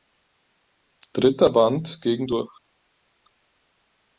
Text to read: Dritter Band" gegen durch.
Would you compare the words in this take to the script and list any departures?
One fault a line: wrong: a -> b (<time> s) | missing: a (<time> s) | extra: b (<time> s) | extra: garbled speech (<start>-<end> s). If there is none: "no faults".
no faults